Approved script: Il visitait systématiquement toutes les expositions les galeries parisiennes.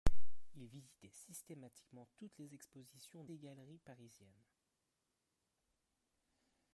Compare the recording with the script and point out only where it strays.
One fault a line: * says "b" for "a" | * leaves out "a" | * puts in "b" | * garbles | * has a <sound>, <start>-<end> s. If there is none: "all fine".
all fine